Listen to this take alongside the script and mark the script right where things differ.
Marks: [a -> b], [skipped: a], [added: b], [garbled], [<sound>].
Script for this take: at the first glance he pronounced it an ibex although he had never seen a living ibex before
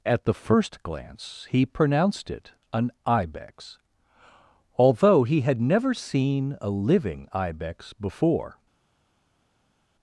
at the first glance he pronounced it an ibex although he had never seen a living ibex before